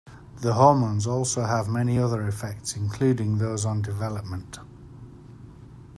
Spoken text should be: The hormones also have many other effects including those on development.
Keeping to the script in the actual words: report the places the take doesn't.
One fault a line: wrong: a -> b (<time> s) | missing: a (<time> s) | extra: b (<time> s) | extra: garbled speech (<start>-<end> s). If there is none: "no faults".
no faults